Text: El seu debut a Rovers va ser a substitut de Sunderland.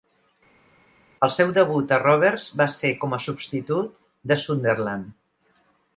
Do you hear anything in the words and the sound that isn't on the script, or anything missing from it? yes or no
yes